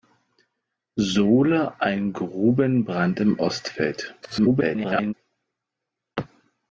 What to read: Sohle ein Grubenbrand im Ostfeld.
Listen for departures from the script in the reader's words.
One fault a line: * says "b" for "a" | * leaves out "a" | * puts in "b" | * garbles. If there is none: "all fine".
* garbles